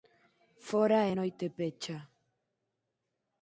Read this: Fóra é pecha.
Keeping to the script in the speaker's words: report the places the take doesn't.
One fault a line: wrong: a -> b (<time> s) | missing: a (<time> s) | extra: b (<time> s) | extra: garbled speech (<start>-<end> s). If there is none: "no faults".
extra: noite (1.2 s)